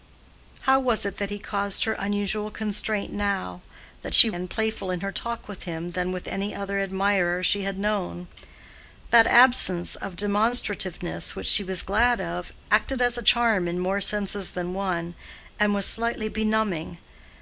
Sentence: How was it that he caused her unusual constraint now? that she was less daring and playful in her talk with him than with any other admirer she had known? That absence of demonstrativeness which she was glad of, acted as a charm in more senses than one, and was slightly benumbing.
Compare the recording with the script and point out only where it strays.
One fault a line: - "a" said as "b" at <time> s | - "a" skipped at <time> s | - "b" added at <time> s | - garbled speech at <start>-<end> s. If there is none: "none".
- "was less daring" skipped at 4.3 s